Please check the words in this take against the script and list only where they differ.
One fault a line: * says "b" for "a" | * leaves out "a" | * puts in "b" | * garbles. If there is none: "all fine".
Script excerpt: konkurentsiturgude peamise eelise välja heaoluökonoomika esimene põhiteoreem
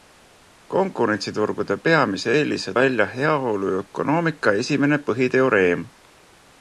all fine